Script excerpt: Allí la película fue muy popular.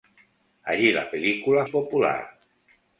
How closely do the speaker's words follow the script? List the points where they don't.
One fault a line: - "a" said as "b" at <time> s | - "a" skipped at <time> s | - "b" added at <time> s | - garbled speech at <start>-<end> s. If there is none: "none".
- "fue muy" skipped at 1.7 s